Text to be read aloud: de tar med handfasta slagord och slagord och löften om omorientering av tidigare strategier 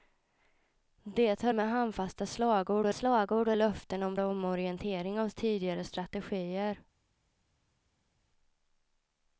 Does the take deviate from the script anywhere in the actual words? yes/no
no